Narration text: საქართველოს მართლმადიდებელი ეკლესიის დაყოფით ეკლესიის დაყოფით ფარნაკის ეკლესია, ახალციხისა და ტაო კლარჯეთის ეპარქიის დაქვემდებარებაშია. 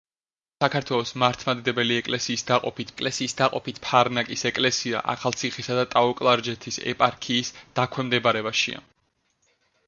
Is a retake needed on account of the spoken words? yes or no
no